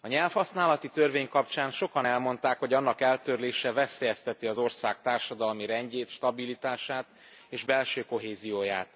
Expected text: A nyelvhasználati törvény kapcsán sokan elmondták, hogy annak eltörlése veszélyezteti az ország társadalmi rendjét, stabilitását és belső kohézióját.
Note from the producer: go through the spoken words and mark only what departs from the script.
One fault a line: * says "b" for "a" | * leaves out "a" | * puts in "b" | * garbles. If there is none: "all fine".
all fine